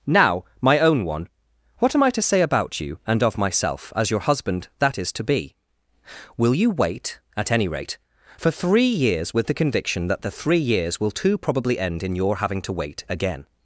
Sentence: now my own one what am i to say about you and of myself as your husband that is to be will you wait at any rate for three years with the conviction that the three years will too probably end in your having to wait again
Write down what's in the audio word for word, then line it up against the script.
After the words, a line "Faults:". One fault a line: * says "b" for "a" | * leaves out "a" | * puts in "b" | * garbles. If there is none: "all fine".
now my own one what am i to say about you and of myself as your husband that is to be will you wait at any rate for three years with the conviction that the three years will too probably end in your having to wait again
Faults:
all fine